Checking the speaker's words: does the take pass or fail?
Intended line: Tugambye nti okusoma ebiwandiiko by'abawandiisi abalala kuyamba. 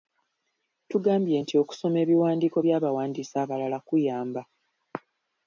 pass